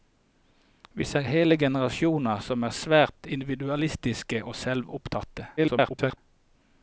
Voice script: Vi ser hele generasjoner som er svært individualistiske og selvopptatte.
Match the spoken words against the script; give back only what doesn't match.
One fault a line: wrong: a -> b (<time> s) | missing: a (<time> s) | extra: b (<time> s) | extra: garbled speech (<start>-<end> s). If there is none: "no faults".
extra: garbled speech (5.6-6.2 s)